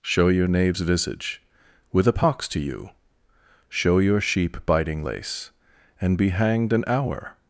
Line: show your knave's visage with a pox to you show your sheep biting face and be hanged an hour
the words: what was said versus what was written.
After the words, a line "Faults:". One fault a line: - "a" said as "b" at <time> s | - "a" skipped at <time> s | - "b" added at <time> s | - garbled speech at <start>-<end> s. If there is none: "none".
show your knave's visage with a pox to you show your sheep biting lace and be hanged an hour
Faults:
- "face" said as "lace" at 5.0 s